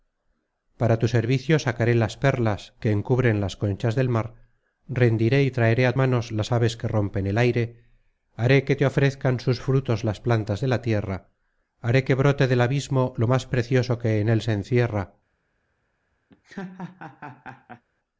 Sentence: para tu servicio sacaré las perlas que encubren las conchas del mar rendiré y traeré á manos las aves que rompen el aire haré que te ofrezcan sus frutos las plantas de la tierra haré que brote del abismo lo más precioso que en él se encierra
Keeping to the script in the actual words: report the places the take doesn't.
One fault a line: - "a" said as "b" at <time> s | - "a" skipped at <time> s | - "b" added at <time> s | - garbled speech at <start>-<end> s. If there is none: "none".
none